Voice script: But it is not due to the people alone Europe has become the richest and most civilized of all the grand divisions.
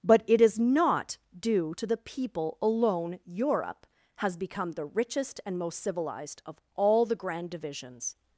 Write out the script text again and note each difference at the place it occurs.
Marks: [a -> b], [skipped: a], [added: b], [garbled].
But it is not due to the people alone Europe has become the richest and most civilized of all the grand divisions.